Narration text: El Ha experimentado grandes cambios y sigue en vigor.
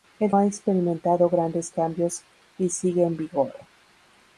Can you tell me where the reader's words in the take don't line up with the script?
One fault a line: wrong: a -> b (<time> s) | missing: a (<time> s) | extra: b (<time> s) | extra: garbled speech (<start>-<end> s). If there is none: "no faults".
no faults